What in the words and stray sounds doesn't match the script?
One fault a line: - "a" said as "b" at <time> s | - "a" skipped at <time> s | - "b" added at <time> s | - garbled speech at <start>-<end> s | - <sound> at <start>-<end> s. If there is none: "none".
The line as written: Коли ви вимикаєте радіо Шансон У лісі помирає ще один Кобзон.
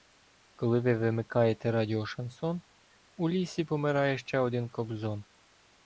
none